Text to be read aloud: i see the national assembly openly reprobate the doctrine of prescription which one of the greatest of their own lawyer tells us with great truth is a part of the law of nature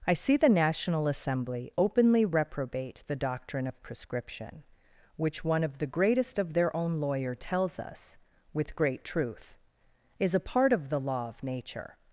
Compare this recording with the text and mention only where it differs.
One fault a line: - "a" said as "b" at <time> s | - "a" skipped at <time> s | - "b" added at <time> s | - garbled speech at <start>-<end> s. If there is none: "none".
none